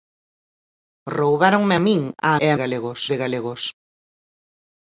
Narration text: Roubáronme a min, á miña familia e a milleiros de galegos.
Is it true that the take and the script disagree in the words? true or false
true